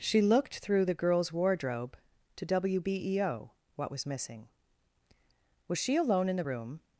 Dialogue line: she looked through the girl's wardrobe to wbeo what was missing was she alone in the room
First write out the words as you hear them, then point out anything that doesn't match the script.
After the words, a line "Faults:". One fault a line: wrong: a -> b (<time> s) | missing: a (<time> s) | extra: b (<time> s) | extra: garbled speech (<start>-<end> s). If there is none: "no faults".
she looked through the girl's wardrobe to wbeo what was missing was she alone in the room
Faults:
no faults